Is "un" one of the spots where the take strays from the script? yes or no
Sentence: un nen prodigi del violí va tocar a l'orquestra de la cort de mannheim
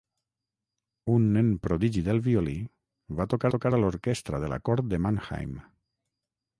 no